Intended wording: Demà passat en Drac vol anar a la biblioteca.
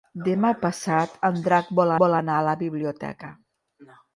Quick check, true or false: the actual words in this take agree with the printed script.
false